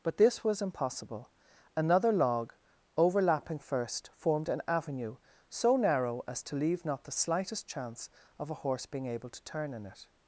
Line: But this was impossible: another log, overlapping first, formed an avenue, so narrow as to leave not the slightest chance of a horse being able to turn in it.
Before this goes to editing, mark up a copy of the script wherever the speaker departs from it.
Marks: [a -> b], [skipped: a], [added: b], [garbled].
But this was impossible: another log, overlapping first, formed an avenue, so narrow as to leave not the slightest chance of a horse being able to turn in it.